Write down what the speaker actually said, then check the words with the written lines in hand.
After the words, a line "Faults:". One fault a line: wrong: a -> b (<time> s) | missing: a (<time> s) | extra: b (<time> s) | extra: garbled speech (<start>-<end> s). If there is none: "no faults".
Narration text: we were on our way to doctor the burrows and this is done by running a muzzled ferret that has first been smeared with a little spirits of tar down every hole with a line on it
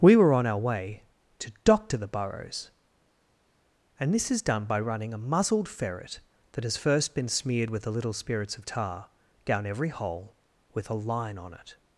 we were on our way to doctor the burrows and this is done by running a muzzled ferret that has first been smeared with a little spirits of tar down every hole with a line on it
Faults:
no faults